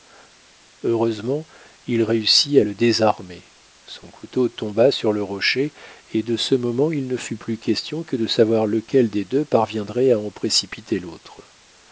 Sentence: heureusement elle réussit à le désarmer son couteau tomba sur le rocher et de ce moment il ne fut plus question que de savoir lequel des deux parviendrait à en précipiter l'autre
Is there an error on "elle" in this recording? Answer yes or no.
yes